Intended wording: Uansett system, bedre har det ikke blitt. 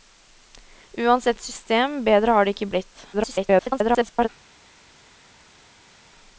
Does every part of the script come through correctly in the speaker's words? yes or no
no